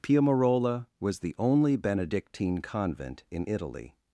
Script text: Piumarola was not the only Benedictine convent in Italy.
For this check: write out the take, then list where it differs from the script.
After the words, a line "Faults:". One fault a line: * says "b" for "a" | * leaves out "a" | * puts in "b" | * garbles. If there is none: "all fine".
Piumarola was the only Benedictine convent in Italy.
Faults:
* leaves out "not"